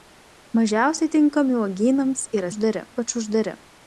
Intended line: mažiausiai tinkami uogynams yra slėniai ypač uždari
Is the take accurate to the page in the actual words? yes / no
no